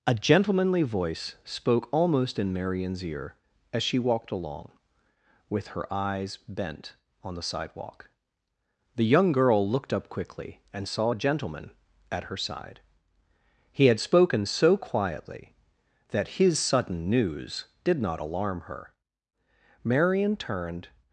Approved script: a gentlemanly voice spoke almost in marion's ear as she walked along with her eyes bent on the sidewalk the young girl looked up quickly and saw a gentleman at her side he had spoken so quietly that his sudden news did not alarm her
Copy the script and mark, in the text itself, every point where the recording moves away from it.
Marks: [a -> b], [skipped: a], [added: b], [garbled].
a gentlemanly voice spoke almost in marion's ear as she walked along with her eyes bent on the sidewalk the young girl looked up quickly and saw a gentleman at her side he had spoken so quietly that his sudden news did not alarm her [added: marion turned]